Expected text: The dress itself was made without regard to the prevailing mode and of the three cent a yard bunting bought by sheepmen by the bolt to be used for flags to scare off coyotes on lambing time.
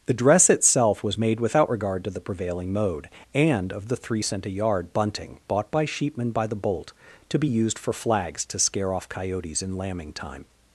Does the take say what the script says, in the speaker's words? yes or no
no